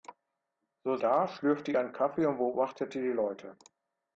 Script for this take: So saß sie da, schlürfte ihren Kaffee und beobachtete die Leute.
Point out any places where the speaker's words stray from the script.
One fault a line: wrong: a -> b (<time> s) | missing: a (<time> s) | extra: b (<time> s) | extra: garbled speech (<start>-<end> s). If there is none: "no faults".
missing: saß sie (1.0 s)